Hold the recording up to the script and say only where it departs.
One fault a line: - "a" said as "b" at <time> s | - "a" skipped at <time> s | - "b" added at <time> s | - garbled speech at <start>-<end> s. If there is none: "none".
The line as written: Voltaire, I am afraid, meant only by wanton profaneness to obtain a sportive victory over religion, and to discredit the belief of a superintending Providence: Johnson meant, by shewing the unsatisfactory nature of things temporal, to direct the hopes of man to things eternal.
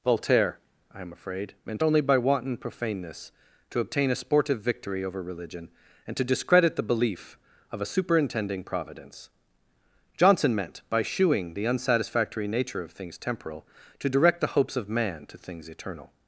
none